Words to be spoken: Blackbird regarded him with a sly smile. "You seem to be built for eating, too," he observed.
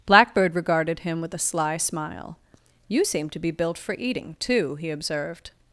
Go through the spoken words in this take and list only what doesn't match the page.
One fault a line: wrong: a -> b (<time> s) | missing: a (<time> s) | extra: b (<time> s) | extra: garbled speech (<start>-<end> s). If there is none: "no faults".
no faults